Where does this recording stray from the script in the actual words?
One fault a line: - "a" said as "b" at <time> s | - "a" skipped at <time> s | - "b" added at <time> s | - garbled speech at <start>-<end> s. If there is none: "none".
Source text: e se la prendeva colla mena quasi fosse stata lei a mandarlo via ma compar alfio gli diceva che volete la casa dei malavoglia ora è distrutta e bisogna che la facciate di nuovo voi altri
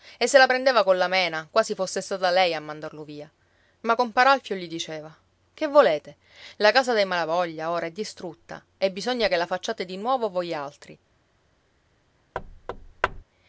none